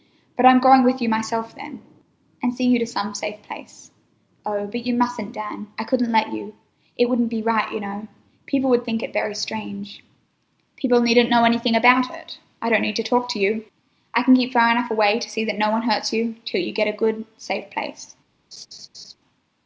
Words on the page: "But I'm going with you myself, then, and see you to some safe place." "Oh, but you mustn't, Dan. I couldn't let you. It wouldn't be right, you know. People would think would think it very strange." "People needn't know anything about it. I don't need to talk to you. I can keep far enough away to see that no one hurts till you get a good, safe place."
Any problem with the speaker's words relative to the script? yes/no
yes